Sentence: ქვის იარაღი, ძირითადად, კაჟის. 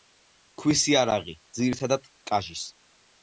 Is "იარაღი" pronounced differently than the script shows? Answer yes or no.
no